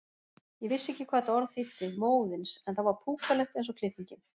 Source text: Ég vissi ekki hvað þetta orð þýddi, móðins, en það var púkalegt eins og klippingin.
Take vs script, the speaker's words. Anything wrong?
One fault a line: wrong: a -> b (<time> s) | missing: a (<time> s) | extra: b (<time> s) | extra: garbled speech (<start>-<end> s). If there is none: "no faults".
no faults